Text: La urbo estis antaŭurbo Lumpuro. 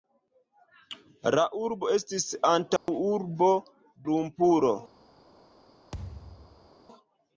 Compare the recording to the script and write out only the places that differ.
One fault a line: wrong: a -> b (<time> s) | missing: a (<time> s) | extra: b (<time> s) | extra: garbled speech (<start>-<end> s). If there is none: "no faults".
no faults